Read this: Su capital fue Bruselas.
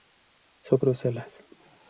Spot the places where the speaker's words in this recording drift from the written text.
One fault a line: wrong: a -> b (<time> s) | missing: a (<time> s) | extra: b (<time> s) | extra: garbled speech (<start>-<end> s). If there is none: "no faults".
missing: capital fue (0.8 s)